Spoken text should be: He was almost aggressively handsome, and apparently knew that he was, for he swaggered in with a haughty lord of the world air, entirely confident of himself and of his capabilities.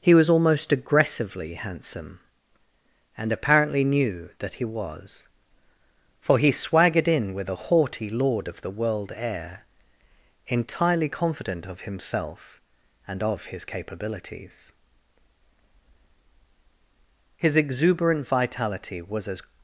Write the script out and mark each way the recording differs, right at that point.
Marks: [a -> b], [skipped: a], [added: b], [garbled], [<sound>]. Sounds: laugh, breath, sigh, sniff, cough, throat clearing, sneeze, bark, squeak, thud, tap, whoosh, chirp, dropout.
He was almost aggressively handsome, and apparently knew that he was, for he swaggered in with a haughty lord of the world air, entirely confident of himself and of his capabilities. [added: His exuberant vitality was as]